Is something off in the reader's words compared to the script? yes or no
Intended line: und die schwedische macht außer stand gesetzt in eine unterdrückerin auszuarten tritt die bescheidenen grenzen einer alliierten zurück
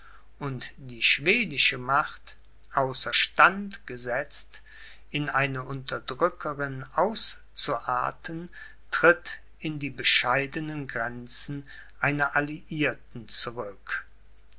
yes